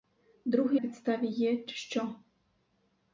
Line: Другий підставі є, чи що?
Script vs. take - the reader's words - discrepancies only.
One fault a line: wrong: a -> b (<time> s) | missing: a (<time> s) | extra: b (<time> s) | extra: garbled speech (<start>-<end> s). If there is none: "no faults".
no faults